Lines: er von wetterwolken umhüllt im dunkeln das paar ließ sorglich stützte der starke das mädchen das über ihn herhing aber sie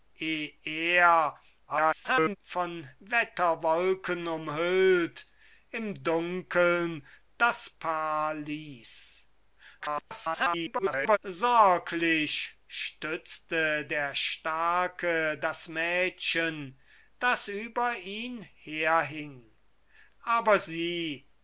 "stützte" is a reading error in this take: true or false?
false